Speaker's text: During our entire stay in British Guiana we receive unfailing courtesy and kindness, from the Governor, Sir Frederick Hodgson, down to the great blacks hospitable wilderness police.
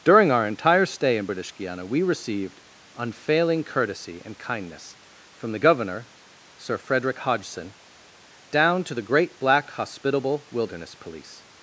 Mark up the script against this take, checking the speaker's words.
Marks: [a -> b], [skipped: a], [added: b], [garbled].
During our entire stay in British Guiana we [receive -> received] unfailing courtesy and kindness, from the Governor, Sir Frederick Hodgson, down to the great [blacks -> black] hospitable wilderness police.